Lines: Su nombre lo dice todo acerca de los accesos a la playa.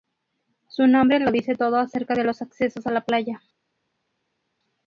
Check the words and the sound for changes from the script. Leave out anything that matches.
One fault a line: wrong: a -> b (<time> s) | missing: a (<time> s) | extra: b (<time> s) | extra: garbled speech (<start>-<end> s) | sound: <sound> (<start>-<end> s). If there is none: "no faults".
no faults